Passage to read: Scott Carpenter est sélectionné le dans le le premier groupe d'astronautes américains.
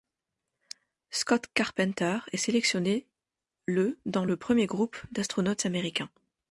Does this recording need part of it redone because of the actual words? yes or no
yes